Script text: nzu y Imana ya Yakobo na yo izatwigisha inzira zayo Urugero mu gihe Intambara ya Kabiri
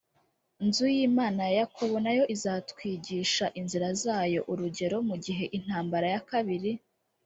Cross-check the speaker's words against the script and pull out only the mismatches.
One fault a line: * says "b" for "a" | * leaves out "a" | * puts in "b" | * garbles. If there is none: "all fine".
all fine